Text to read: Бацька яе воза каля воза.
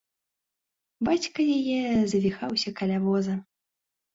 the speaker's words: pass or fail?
fail